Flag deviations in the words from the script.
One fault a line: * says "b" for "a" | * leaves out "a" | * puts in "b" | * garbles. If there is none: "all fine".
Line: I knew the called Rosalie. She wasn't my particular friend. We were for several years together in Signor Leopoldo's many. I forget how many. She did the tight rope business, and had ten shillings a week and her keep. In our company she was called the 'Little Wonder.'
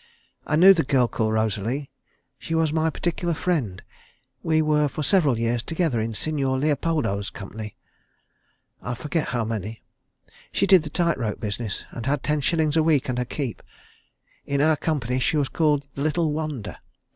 * puts in "girl"
* says "was" for "wasn't"
* says "company" for "many"